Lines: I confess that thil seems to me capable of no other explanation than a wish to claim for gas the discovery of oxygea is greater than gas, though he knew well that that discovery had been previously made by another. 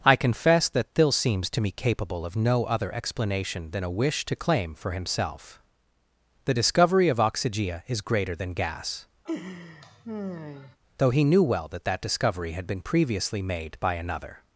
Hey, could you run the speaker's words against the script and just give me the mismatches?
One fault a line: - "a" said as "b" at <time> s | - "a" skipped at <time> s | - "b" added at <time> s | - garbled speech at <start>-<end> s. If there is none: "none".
- "gas" said as "himself" at 4.9 s